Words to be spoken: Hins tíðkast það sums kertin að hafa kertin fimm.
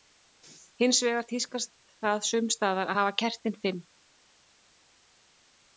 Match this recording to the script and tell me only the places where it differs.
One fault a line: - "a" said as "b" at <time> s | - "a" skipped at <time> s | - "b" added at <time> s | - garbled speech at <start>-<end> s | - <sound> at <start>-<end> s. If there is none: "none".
- "vegar" added at 1.1 s
- "kertin" said as "staðar" at 2.6 s